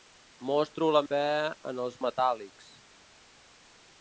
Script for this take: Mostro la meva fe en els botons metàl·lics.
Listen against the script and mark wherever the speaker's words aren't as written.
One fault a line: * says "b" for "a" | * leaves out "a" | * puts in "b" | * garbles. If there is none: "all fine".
* leaves out "meva"
* leaves out "botons"